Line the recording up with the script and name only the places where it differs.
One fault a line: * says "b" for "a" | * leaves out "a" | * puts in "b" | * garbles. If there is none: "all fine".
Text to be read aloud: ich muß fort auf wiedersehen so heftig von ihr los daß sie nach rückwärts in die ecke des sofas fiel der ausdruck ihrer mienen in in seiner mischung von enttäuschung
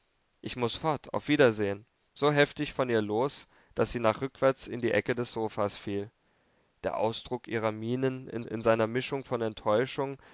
all fine